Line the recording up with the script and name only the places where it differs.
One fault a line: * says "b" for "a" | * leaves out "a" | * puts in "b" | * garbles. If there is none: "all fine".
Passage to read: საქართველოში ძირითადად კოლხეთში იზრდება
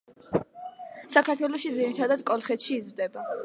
all fine